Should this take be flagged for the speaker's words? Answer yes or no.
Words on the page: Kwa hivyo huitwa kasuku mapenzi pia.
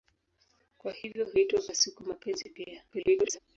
yes